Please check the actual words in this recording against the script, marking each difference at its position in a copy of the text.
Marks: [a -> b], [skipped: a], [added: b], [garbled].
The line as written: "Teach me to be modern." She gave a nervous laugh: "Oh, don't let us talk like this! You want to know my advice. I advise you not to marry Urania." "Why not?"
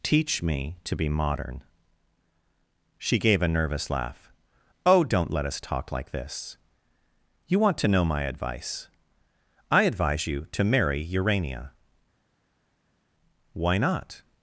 "Teach me to be modern." She gave a nervous laugh: "Oh, don't let us talk like this! You want to know my advice. I advise you [skipped: not] to marry Urania." "Why not?"